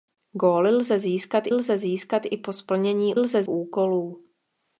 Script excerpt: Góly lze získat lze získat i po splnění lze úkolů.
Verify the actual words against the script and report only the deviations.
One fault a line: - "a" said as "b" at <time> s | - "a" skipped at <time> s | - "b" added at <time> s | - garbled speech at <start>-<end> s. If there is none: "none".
none